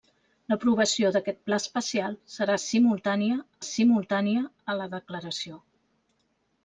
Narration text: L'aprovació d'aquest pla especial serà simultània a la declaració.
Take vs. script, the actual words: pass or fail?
fail